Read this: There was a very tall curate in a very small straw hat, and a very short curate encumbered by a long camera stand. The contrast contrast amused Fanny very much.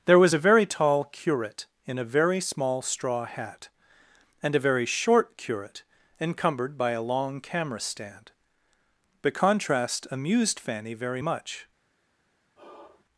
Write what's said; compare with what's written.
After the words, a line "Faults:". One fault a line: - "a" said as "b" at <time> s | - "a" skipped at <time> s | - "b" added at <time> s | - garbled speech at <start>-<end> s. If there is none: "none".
There was a very tall curate in a very small straw hat, and a very short curate encumbered by a long camera stand. The contrast amused Fanny very much.
Faults:
- "contrast" skipped at 10.1 s